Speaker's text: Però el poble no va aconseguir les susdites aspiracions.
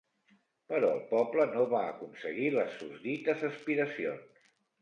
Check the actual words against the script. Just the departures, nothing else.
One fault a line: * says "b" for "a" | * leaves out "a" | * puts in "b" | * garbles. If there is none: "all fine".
all fine